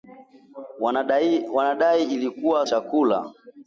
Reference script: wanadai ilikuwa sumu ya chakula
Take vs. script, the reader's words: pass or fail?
fail